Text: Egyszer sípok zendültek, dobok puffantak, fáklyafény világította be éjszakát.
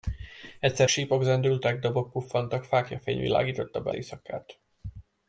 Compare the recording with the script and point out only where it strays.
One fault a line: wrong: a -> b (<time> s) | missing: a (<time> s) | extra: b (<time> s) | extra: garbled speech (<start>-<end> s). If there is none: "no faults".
no faults